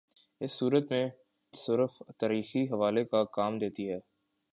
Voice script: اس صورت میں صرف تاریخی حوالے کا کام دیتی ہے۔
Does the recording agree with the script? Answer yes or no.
yes